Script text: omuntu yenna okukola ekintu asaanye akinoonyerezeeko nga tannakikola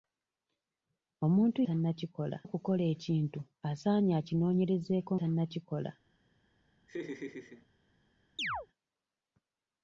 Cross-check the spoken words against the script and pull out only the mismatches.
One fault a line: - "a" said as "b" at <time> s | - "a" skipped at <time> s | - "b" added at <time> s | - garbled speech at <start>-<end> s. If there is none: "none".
- "yenna" said as "tannakikola" at 1.7 s
- "nga" skipped at 5.1 s